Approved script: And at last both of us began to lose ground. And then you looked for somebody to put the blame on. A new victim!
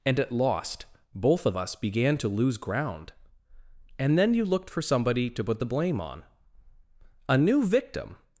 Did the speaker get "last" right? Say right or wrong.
wrong